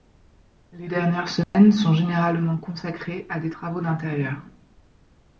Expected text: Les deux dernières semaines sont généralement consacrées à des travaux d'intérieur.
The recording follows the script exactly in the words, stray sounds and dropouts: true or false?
false